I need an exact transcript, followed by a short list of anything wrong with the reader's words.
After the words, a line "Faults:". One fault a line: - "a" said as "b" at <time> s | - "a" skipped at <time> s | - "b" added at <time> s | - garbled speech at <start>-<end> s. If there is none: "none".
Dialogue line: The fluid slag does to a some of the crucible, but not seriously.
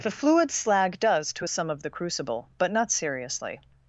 The fluid slag does to a some of the crucible, but not seriously.
Faults:
none